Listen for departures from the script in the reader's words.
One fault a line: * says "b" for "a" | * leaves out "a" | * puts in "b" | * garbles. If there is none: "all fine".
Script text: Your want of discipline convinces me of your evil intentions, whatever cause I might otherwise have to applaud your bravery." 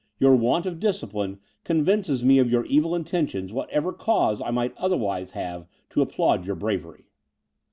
all fine